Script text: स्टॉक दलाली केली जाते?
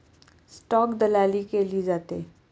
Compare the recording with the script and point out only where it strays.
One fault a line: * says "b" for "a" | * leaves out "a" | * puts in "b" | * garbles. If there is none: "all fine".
all fine